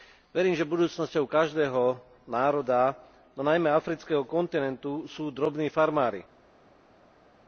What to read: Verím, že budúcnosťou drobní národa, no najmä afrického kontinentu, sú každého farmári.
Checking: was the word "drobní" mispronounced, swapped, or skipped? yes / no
yes